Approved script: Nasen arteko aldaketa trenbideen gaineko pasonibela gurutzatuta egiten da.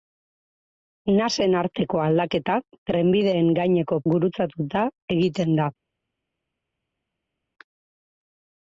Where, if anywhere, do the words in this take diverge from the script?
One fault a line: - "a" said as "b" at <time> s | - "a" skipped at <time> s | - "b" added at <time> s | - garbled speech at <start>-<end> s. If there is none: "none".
- "pasonibela" skipped at 4.0 s